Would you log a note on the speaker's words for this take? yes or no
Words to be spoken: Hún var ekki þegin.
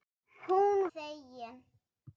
yes